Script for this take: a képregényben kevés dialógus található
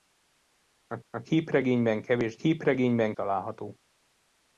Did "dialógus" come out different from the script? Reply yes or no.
yes